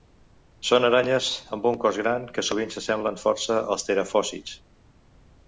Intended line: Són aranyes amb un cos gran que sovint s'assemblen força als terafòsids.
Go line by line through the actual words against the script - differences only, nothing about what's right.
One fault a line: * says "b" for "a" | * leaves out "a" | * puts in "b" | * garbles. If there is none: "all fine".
all fine